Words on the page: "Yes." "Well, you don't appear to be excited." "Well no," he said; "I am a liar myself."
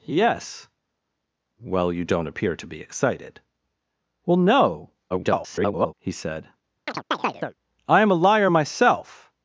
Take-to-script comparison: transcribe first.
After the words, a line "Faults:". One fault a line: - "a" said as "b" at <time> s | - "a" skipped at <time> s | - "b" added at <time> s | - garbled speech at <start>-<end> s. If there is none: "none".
"Yes." "Well, you don't appear to be excited." "Well no," [garbled] he said; "I am a liar myself."
Faults:
- garbled speech at 5.1-5.9 s